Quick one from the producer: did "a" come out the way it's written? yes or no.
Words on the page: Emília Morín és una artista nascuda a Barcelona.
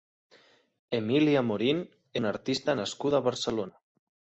yes